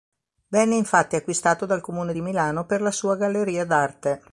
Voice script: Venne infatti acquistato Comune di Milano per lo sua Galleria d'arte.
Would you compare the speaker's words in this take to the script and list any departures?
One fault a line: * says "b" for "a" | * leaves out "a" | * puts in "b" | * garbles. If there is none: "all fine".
* puts in "dal"
* says "la" for "lo"